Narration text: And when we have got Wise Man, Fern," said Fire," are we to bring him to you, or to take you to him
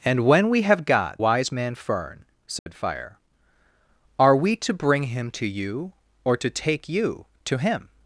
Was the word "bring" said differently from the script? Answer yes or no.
no